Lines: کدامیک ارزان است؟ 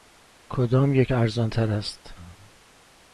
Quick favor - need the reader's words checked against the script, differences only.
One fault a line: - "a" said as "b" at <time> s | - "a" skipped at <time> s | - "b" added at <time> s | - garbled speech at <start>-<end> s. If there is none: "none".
- "تر" added at 1.5 s